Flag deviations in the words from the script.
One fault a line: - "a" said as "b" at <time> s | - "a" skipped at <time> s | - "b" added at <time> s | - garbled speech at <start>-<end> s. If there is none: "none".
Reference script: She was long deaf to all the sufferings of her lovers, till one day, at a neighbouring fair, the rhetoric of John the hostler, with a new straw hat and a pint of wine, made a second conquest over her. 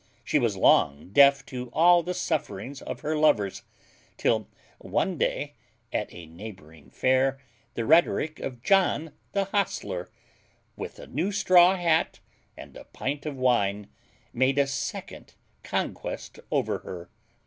none